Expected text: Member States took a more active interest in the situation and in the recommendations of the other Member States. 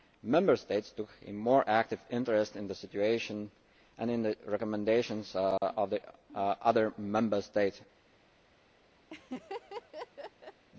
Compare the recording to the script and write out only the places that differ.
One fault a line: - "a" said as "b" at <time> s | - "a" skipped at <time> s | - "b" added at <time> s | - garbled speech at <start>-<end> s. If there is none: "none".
none